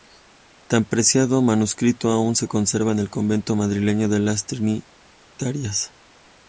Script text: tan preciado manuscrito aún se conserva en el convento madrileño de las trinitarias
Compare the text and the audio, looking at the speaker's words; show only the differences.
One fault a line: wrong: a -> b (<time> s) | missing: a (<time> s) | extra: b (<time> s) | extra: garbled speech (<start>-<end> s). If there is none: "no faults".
no faults